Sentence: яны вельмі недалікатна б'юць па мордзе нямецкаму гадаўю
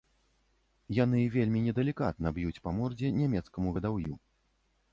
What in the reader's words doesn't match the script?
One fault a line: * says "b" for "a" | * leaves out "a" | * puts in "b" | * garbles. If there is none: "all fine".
all fine